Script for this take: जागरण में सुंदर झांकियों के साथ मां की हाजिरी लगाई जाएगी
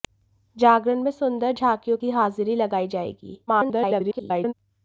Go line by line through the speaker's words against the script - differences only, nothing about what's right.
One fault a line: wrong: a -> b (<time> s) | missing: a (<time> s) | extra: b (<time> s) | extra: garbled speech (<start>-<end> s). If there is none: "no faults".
missing: के साथ मां (2.0 s)
extra: garbled speech (3.5-4.5 s)